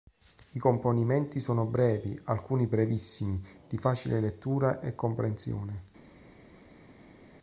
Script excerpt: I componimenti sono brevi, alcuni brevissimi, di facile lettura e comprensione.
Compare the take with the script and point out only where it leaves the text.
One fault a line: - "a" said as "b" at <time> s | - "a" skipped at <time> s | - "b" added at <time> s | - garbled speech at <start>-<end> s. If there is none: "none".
none